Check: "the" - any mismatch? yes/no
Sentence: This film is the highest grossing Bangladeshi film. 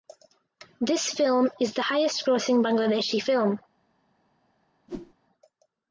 no